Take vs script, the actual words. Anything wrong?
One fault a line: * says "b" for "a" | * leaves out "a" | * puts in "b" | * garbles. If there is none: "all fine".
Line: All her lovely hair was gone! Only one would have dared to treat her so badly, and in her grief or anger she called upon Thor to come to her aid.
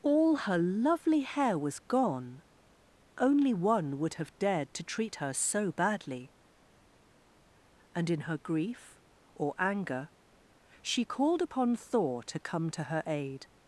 all fine